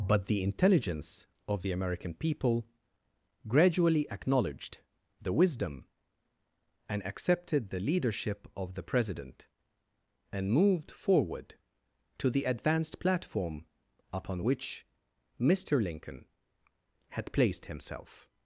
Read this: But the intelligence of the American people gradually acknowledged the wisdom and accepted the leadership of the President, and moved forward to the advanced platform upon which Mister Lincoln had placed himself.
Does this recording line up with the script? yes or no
yes